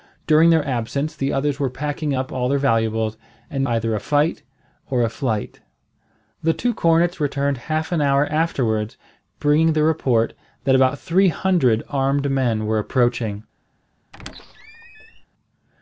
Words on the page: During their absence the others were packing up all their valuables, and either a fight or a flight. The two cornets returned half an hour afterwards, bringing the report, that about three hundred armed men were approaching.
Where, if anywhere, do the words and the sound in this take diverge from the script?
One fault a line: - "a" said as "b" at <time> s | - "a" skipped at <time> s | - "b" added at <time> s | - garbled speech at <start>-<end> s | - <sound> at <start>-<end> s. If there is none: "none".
- squeak at 14.1-15.3 s